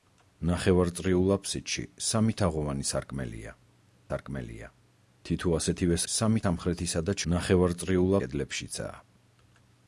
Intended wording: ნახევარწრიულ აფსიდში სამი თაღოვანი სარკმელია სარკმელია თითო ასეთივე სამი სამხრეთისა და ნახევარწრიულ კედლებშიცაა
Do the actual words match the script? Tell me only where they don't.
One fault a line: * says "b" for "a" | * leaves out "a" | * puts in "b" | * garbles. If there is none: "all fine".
all fine